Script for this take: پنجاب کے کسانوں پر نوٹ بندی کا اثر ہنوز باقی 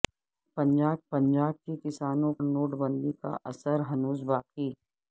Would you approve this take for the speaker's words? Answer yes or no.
no